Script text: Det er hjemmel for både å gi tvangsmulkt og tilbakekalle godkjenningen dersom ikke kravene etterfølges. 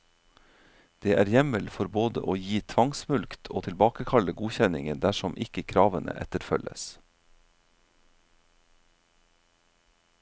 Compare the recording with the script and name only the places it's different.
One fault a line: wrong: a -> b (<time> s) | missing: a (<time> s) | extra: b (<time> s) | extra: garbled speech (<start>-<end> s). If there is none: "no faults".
no faults